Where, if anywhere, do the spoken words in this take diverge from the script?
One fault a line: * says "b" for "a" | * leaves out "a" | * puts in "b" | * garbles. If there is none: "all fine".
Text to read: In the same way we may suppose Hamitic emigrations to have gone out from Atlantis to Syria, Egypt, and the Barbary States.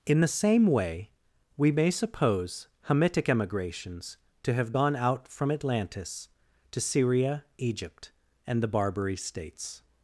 all fine